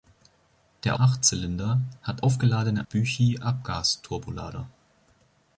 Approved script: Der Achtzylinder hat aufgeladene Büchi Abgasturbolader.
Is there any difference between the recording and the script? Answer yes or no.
no